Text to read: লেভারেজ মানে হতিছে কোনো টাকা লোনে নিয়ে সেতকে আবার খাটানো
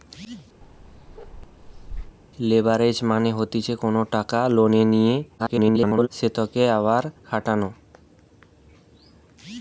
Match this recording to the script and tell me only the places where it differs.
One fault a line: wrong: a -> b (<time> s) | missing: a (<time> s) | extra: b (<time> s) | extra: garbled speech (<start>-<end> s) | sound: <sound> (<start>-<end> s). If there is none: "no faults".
sound: bark (0.6-2.2 s)
extra: garbled speech (5.4-6.1 s)